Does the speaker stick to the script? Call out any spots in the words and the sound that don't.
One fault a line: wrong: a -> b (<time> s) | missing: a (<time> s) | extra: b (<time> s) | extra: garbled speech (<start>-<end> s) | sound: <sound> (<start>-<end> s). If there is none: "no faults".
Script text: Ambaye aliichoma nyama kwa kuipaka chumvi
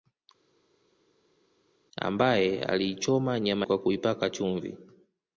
no faults